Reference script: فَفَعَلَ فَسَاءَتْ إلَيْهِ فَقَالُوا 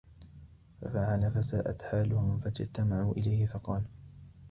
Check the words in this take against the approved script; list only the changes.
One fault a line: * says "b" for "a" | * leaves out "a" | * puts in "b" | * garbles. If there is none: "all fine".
* puts in "حَالُهُمْ فَاجْتَمَعُوا"